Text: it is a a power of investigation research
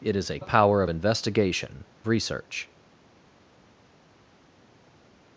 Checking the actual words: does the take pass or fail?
pass